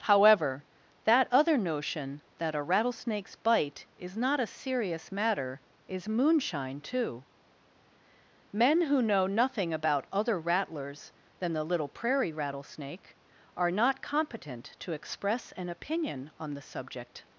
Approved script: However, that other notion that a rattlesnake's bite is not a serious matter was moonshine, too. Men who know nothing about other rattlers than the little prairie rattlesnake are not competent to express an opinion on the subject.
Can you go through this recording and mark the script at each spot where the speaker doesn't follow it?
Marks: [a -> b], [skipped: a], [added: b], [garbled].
However, that other notion that a rattlesnake's bite is not a serious matter [was -> is] moonshine, too. Men who know nothing about other rattlers than the little prairie rattlesnake are not competent to express an opinion on the subject.